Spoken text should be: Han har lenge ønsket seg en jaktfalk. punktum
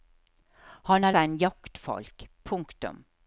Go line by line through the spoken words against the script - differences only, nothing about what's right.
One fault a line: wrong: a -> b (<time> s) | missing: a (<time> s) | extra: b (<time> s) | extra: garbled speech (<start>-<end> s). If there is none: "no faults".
missing: lenge ønsket (1.2 s)